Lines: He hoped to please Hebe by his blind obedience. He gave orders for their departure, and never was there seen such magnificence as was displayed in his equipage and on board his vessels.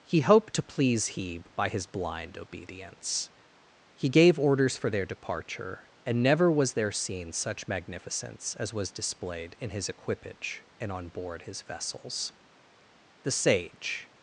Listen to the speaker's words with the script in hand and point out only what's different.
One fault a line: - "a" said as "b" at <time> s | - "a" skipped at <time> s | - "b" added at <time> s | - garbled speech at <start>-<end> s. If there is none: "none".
- "The sage" added at 13.2 s